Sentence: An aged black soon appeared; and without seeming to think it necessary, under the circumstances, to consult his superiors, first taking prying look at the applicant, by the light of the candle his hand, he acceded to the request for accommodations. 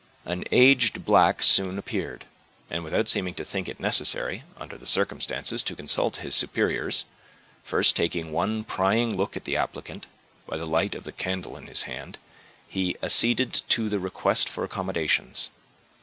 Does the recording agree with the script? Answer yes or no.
no